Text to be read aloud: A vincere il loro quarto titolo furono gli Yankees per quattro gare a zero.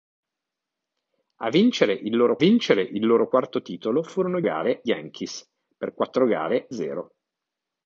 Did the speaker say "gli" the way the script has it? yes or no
no